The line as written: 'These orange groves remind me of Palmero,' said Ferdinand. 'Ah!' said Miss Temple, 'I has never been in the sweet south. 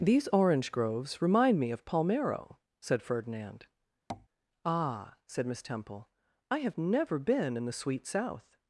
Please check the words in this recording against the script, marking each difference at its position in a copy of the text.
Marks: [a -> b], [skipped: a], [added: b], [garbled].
'These orange groves remind me of Palmero,' said Ferdinand. 'Ah!' said Miss Temple, 'I [has -> have] never been in the sweet south.